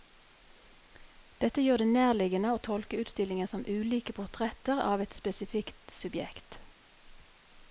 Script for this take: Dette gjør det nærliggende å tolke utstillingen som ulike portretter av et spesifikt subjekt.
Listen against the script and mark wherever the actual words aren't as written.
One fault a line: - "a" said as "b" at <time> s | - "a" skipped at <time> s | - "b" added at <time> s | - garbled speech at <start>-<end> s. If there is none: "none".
none